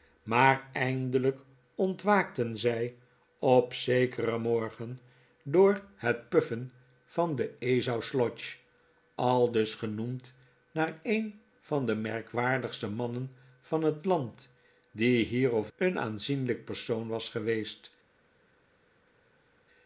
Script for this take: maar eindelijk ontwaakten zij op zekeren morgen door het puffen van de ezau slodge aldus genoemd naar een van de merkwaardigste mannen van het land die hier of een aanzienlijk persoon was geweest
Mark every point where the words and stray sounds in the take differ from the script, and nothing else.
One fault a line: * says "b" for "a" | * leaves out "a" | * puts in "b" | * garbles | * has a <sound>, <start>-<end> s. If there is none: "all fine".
all fine